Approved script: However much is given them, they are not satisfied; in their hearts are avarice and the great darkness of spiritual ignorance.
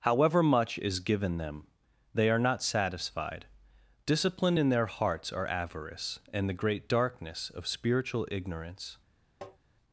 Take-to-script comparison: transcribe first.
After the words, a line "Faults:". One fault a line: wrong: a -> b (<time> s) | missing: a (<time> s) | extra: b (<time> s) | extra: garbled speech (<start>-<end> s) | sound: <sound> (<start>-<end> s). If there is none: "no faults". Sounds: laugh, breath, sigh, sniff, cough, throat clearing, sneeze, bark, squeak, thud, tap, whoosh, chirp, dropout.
However much is given them, they are not satisfied; discipline in their hearts are avarice and the great darkness of spiritual ignorance.
Faults:
extra: discipline (4.0 s)
sound: tap (9.4-9.6 s)